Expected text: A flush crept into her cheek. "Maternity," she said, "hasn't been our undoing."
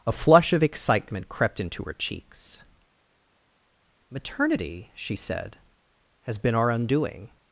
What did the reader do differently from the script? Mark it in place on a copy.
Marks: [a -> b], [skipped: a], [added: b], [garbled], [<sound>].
A flush [added: of excitement] crept into her [cheek. -> cheeks] "Maternity," she said, ["hasn't -> has] been our undoing."